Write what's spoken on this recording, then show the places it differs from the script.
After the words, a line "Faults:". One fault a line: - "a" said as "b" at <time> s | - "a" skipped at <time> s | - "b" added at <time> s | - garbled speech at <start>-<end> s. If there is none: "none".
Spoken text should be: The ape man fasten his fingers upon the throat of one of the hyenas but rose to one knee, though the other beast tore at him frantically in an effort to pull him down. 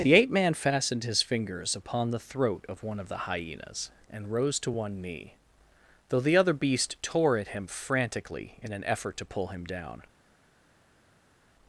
The ape man fastened his fingers upon the throat of one of the hyenas and rose to one knee, though the other beast tore at him frantically in an effort to pull him down.
Faults:
- "fasten" said as "fastened" at 0.6 s
- "but" said as "and" at 4.1 s